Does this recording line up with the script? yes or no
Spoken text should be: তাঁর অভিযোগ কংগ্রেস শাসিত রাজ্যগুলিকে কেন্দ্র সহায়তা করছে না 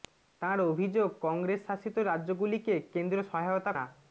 no